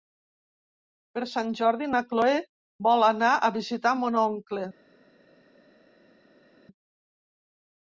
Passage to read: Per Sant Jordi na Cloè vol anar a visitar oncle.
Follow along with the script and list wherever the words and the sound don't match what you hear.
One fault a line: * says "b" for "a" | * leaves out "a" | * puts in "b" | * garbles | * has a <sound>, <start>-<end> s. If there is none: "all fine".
* puts in "mon"